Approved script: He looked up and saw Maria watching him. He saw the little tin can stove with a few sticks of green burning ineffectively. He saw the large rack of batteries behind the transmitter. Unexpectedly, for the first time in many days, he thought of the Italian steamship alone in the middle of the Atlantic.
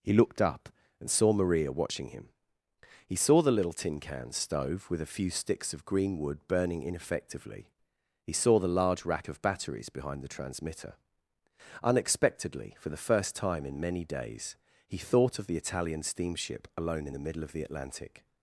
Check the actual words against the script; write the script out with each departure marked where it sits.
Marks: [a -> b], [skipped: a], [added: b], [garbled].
He looked up and saw Maria watching him. He saw the little tin can stove with a few sticks of green [added: wood] burning ineffectively. He saw the large rack of batteries behind the transmitter. Unexpectedly, for the first time in many days, he thought of the Italian steamship alone in the middle of the Atlantic.